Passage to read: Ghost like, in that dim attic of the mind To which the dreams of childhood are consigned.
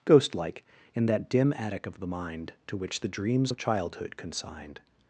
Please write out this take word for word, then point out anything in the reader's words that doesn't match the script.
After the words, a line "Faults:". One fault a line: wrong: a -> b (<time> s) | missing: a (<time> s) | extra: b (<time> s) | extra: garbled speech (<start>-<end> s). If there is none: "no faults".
Ghost like, in that dim attic of the mind To which the dreams of childhood consigned.
Faults:
missing: are (4.2 s)